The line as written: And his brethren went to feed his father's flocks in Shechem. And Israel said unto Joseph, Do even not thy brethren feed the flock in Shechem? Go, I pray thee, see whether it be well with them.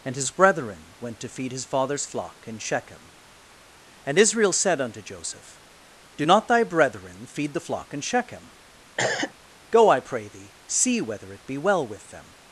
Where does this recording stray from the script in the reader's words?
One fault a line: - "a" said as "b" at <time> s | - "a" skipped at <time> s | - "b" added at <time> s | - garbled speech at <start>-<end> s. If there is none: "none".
- "flocks" said as "flock" at 2.0 s
- "even" skipped at 6.2 s